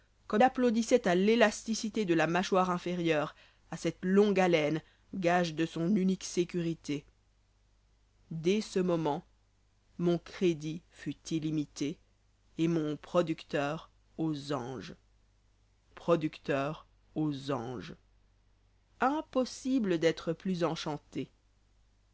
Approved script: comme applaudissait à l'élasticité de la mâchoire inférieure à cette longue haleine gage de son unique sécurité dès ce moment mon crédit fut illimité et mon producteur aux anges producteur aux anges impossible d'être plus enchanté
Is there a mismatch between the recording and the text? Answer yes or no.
no